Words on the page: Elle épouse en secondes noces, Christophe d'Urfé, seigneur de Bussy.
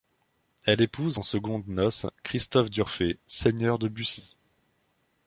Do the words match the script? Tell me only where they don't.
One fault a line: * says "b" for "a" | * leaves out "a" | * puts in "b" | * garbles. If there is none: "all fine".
all fine